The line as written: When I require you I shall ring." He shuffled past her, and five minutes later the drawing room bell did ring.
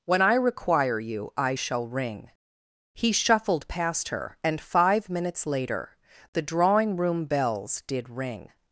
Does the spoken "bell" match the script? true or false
false